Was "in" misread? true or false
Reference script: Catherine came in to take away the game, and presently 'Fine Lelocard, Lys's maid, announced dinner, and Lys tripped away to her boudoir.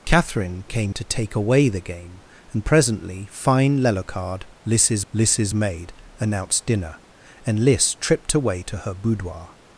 true